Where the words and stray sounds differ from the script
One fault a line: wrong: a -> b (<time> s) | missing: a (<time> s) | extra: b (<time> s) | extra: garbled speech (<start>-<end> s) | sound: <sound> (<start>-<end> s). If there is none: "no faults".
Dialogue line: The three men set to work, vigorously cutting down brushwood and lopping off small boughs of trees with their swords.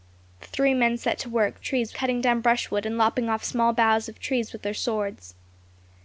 wrong: vigorously -> trees (1.6 s)